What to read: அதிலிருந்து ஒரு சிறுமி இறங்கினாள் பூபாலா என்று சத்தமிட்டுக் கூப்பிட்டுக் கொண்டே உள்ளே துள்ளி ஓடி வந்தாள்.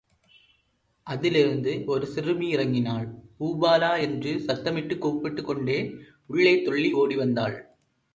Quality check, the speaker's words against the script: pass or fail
pass